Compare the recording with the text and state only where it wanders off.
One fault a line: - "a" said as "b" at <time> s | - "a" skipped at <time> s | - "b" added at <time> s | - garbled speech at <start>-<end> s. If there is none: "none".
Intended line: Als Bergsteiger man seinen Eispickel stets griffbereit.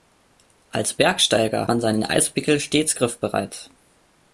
none